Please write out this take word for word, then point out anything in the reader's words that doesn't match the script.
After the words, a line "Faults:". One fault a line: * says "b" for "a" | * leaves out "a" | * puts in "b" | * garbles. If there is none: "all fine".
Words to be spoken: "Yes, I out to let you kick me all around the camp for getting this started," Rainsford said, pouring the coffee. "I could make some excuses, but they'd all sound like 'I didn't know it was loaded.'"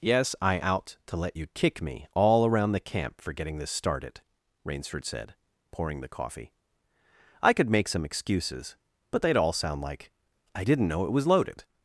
"Yes, I out to let you kick me all around the camp for getting this started," Rainsford said, pouring the coffee. "I could make some excuses, but they'd all sound like 'I didn't know it was loaded.'"
Faults:
all fine